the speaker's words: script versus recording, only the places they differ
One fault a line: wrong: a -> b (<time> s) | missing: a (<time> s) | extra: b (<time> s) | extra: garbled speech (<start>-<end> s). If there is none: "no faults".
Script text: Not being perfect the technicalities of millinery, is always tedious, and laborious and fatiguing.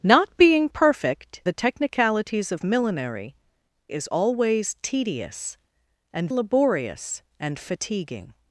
no faults